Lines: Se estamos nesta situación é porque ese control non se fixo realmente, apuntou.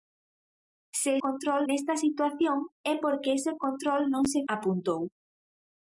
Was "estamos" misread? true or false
true